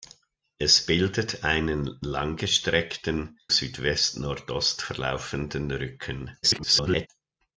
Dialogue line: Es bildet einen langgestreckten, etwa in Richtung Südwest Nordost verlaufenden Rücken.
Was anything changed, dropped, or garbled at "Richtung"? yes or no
yes